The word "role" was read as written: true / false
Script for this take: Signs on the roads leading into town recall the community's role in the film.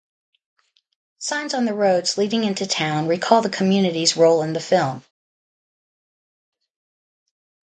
true